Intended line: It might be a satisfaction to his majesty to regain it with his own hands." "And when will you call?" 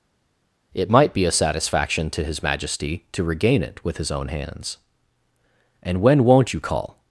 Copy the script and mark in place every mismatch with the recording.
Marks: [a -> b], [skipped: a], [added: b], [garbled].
It might be a satisfaction to his majesty to regain it with his own hands." "And when [will -> won't] you call?"